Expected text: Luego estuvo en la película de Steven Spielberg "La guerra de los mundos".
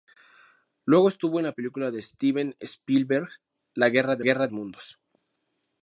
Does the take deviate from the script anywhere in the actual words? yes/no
yes